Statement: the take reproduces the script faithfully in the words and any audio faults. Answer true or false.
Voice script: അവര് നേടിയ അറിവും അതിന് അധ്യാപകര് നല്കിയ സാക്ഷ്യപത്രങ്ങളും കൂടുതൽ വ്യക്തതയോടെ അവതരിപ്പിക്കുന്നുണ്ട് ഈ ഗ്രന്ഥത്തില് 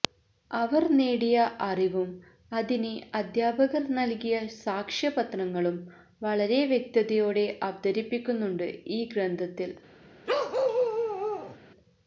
false